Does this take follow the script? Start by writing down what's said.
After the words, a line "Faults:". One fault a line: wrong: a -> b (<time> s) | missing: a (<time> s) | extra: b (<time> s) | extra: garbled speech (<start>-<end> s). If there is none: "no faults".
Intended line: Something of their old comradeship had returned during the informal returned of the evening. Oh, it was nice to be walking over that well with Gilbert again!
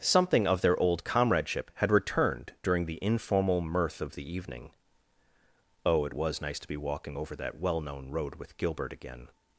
Something of their old comradeship had returned during the informal mirth of the evening. Oh, it was nice to be walking over that well known road with Gilbert again!
Faults:
wrong: returned -> mirth (3.6 s)
extra: known road (7.8 s)